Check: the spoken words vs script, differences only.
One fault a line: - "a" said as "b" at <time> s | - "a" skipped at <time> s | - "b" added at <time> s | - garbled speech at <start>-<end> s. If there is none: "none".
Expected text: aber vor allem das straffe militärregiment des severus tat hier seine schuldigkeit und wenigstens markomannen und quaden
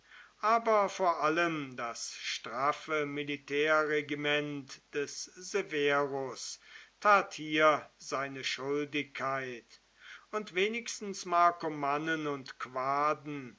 none